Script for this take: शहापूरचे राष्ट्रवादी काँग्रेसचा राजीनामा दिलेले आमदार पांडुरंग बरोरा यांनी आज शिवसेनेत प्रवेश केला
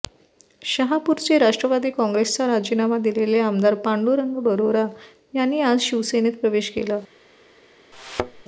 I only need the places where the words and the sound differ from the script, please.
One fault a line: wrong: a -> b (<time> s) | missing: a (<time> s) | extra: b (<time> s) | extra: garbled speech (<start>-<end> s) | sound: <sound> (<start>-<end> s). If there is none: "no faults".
sound: thud (7.9-8.4 s)